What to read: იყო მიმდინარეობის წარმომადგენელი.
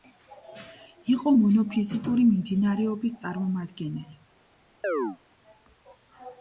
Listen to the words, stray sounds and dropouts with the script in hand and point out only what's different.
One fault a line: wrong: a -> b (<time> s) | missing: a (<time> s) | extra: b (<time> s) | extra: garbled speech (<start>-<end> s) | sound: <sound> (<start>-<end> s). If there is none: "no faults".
extra: მონოფიზიტური (1.4 s)
sound: chirp (4.8-5.2 s)